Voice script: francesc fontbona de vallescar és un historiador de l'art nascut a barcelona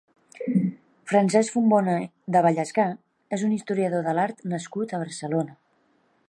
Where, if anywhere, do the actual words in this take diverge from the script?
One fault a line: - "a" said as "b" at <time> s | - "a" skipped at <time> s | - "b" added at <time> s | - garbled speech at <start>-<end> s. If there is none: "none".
none